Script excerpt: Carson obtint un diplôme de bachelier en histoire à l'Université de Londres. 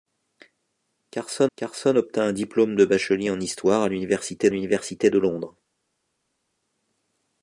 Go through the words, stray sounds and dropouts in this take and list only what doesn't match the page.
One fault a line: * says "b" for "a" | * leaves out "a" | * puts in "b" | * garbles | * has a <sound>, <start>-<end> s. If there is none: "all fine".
* puts in "carson"
* puts in "l'Université"